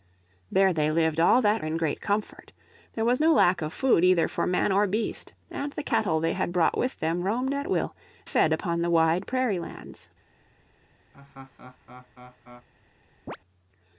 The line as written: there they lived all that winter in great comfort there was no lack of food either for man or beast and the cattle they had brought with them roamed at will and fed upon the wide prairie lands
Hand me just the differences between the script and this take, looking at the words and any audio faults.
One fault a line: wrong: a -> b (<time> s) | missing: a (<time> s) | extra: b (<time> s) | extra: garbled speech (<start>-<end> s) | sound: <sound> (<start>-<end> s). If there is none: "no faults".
missing: winter (1.6 s)
missing: and (7.9 s)
sound: laugh (11.1-12.7 s)
sound: chirp (13.3-13.4 s)